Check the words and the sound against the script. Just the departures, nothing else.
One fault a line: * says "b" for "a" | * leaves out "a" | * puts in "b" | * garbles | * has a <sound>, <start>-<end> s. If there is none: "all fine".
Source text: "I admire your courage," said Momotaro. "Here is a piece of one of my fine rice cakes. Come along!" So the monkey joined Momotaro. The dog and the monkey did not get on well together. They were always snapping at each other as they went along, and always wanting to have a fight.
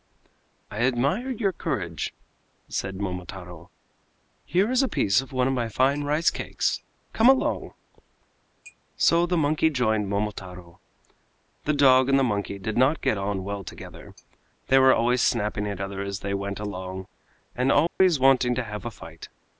* leaves out "each"
* has a dropout, 17.9-18.0 s